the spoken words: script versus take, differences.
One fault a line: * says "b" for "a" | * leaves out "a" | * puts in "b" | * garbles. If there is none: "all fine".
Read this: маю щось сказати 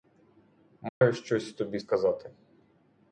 * puts in "тобі"